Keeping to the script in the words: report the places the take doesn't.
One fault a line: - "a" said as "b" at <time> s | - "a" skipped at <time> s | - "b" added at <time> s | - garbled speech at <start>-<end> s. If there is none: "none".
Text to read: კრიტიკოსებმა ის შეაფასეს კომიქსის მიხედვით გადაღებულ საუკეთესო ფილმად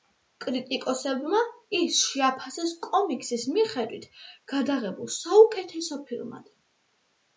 none